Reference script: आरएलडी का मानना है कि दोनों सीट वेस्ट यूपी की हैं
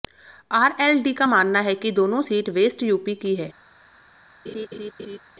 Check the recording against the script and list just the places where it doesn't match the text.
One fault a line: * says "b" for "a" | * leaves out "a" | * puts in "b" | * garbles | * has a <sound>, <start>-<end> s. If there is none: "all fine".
* has a laugh, 4.5-5.2 s